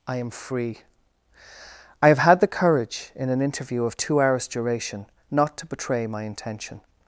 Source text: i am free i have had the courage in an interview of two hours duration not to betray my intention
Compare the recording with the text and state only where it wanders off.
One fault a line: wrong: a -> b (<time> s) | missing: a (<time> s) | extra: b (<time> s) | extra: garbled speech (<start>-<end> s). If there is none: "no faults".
no faults